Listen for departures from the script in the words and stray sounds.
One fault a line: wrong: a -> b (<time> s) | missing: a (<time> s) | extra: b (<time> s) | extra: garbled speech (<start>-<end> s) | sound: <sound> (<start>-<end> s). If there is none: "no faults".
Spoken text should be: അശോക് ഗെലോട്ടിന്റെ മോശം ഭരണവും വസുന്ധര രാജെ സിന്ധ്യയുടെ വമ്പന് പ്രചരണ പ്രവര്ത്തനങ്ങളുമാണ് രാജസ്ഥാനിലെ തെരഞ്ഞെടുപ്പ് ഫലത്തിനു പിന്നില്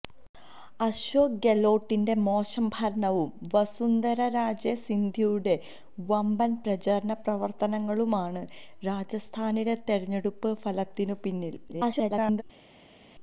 extra: garbled speech (11.7-12.4 s)